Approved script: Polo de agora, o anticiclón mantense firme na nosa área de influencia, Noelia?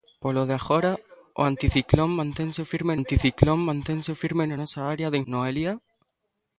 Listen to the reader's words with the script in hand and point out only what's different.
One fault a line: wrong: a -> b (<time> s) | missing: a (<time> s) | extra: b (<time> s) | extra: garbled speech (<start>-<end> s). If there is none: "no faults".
extra: anticiclón mantense firme (3.0 s)
missing: influencia (5.2 s)